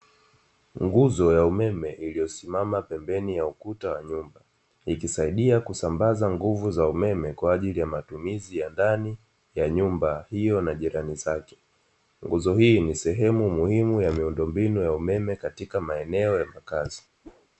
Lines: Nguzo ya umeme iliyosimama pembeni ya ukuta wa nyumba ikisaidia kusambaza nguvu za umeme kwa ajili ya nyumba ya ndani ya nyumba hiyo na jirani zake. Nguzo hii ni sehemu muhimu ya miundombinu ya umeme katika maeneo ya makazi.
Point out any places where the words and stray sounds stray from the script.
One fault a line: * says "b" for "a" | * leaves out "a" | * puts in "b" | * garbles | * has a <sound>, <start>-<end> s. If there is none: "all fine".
* says "matumizi" for "nyumba"
* has a whoosh, 17.2-17.5 s